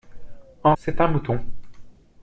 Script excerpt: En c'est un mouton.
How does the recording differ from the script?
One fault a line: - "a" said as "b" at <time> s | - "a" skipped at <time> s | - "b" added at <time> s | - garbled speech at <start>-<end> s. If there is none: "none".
none